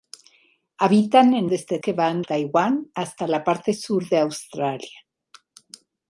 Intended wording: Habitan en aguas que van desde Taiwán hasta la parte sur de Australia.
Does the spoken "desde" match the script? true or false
false